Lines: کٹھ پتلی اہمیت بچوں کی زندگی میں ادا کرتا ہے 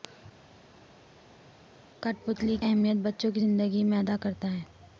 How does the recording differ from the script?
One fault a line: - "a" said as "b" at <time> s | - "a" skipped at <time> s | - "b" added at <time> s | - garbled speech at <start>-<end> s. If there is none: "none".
none